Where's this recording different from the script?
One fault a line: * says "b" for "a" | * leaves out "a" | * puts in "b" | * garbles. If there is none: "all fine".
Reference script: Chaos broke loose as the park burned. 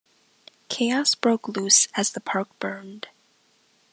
all fine